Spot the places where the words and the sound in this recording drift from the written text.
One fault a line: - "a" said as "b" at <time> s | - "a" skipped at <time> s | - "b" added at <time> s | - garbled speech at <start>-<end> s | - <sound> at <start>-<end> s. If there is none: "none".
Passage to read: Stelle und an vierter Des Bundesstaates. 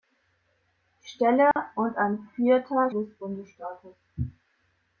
- dropout at 1.5-1.6 s